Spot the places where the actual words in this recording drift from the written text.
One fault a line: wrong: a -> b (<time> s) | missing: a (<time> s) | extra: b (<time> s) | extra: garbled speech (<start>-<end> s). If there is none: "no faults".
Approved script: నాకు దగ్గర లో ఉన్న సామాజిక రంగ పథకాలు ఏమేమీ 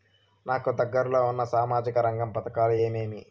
no faults